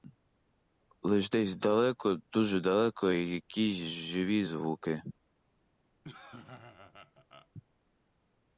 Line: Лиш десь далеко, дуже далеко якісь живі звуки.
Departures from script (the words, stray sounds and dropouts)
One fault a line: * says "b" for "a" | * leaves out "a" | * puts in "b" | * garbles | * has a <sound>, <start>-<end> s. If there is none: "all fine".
* has a laugh, 6.0-7.5 s